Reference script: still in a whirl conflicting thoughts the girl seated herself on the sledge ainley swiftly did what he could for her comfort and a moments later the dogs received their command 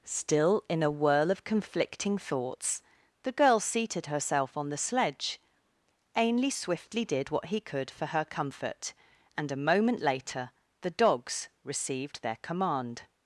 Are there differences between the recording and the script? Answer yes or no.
yes